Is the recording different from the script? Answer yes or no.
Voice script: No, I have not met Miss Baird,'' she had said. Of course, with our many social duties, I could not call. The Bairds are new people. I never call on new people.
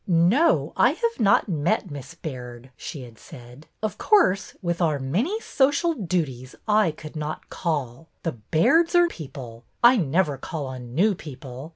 yes